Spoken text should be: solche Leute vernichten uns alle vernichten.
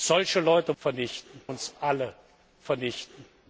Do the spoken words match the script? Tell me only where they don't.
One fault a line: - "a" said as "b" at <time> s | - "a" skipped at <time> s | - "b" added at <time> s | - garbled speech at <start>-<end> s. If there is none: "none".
none